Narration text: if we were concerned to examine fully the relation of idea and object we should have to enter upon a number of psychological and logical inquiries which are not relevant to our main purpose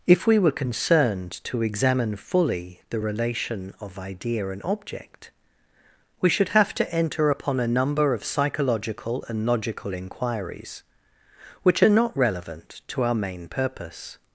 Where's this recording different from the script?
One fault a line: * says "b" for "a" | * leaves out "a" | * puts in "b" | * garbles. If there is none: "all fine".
all fine